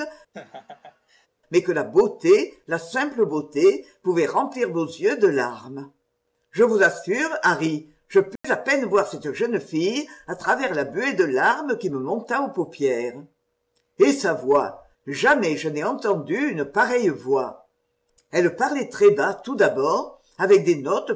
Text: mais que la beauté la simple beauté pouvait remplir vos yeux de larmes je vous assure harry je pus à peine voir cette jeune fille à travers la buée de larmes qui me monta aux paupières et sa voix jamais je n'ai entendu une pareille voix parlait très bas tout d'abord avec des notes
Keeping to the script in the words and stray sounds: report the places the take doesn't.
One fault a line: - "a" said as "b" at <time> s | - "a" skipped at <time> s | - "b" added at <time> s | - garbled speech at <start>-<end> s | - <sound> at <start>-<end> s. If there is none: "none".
- laugh at 0.3-1.3 s
- dropout at 8.4-8.4 s
- "elle" added at 18.3 s